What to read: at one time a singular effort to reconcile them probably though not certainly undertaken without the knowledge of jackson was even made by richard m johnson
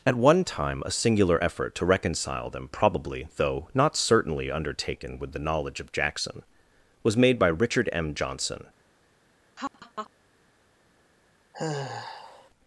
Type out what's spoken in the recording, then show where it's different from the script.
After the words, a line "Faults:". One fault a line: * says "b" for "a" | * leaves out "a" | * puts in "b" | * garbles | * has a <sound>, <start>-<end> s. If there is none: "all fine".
at one time a singular effort to reconcile them probably though not certainly undertaken with the knowledge of jackson was made by richard m johnson
Faults:
* says "with" for "without"
* leaves out "even"
* has a laugh, 9.6-10.1 s
* has a sigh, 11.5-12.5 s